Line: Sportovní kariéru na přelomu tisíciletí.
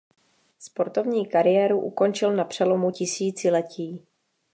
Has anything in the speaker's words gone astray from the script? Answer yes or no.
yes